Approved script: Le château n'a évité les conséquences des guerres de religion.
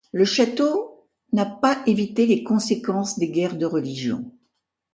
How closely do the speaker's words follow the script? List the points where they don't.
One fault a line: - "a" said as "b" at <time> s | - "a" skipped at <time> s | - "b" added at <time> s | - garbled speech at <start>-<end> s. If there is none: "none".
- "pas" added at 1.4 s